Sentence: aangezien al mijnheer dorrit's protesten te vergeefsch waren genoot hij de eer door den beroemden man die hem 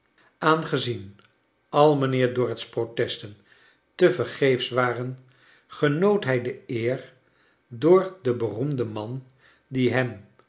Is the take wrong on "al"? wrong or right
right